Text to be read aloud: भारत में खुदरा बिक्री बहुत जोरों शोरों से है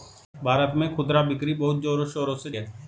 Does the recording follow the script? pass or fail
pass